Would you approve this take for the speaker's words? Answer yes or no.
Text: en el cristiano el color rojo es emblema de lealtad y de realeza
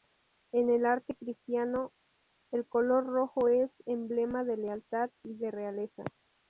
no